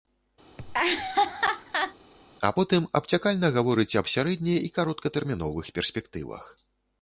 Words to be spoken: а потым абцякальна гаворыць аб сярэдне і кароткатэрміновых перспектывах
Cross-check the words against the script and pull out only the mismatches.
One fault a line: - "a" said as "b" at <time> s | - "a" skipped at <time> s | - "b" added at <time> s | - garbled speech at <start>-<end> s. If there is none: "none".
none